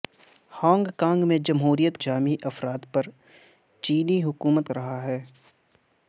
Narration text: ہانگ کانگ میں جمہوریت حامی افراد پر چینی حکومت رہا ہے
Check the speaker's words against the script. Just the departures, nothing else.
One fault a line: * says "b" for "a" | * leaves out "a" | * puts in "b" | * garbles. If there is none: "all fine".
all fine